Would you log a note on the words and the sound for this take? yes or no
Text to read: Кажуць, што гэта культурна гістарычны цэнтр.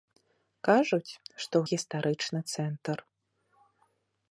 yes